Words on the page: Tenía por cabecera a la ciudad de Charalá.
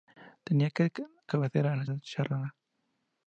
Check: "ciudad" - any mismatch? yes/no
yes